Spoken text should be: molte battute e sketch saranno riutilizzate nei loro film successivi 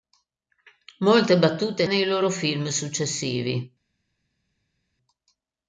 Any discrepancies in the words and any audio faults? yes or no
yes